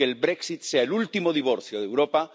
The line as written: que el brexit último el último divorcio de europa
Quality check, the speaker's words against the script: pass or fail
fail